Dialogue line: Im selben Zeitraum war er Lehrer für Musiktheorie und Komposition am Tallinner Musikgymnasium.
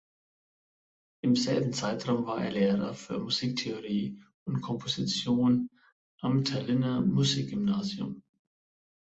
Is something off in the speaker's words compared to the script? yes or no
no